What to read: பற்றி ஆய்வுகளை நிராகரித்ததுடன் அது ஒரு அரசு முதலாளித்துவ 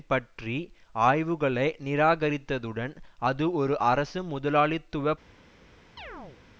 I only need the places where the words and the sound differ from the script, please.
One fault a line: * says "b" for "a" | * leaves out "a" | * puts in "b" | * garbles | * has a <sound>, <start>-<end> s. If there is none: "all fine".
* has a chirp, 6.0-6.4 s